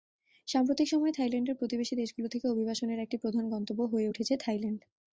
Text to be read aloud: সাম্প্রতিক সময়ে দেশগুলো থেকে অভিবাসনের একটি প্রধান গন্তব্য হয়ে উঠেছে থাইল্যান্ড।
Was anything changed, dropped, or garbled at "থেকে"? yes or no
no